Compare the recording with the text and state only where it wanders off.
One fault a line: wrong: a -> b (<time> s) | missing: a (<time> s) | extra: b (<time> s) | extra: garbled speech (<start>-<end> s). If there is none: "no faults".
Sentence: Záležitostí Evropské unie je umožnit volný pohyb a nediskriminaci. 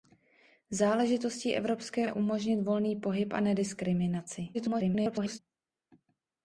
missing: unie (2.1 s)
extra: garbled speech (4.5-5.4 s)